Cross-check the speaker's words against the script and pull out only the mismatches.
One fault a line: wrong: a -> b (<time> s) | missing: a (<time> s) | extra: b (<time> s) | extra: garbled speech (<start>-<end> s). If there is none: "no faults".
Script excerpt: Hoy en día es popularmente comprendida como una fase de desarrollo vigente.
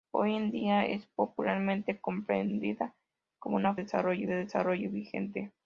wrong: fase -> desarrollo (3.8 s)